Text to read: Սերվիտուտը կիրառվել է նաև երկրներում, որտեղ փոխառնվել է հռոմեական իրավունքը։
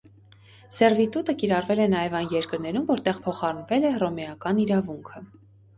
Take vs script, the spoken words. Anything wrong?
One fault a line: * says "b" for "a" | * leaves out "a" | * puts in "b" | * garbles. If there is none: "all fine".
* puts in "այն"